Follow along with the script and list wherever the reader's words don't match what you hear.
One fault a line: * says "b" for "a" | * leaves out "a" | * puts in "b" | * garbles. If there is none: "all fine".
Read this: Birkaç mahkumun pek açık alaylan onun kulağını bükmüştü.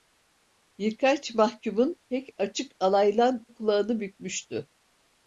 * leaves out "onun"